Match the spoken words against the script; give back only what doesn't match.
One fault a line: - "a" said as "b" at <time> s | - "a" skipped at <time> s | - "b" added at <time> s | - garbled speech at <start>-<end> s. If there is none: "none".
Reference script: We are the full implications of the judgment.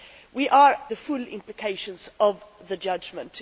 none